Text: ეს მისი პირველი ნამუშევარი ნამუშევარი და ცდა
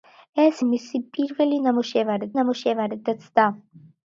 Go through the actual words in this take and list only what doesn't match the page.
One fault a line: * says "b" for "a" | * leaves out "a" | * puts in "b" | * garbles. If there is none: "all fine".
all fine